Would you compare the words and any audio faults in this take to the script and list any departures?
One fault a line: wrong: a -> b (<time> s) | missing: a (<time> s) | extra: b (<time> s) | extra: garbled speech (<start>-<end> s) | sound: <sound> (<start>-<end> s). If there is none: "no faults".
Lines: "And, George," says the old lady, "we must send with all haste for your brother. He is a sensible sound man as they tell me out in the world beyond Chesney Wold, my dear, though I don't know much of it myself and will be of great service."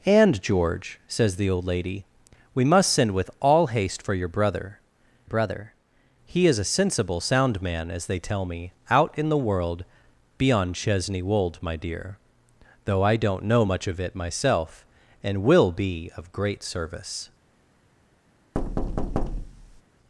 extra: brother (5.2 s)
sound: thud (18.5-19.8 s)